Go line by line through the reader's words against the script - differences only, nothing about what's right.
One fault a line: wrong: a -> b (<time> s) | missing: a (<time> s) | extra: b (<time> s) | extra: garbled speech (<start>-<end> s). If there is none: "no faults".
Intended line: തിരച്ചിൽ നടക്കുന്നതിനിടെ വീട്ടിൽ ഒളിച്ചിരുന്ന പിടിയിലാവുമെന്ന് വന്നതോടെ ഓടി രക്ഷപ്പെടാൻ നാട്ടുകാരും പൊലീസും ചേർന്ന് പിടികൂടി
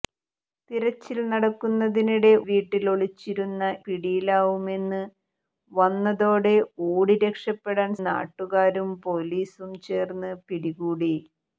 no faults